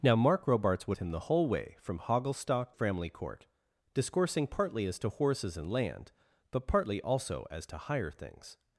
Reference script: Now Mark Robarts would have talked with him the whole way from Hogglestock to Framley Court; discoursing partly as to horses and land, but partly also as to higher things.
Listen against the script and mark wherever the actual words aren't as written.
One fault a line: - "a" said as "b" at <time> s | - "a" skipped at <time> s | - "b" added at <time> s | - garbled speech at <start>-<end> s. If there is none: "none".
- "have talked with" skipped at 1.0 s
- "to" skipped at 2.7 s